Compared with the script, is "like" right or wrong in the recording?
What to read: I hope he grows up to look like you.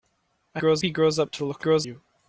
wrong